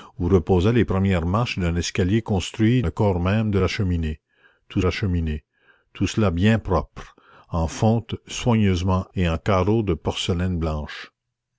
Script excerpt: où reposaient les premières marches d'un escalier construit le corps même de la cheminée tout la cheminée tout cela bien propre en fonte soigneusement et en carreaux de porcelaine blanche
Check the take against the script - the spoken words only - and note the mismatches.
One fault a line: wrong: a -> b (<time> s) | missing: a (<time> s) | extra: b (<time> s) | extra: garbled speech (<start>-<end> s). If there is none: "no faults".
no faults